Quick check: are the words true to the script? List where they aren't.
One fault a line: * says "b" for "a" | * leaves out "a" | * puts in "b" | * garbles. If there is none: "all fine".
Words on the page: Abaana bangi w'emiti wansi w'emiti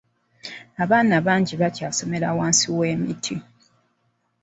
* says "bakyasomera" for "w'emiti"